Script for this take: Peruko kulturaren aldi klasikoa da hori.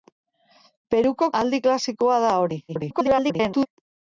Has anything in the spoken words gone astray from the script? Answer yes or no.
yes